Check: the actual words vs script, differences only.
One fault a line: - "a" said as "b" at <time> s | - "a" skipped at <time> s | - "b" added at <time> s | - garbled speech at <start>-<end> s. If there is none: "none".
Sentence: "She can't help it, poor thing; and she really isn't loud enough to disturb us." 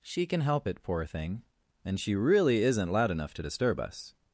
- "can't" said as "can" at 0.2 s